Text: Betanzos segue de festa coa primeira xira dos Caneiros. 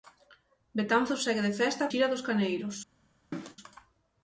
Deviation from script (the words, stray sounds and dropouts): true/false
true